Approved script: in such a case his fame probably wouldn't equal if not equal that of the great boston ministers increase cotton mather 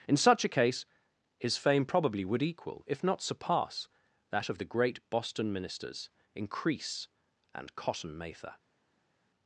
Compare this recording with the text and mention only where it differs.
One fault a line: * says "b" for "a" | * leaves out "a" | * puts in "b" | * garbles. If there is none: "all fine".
* says "would" for "wouldn't"
* says "surpass" for "equal"
* puts in "and"